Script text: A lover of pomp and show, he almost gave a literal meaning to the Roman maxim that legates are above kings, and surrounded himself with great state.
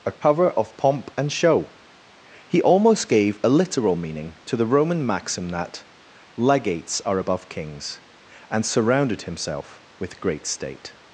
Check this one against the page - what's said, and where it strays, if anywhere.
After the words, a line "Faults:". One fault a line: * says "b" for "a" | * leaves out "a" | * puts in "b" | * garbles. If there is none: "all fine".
A cover of pomp and show, he almost gave a literal meaning to the Roman maxim that legates are above kings, and surrounded himself with great state.
Faults:
* says "cover" for "lover"